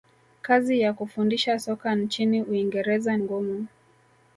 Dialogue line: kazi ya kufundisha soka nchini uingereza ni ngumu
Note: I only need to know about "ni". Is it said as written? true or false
false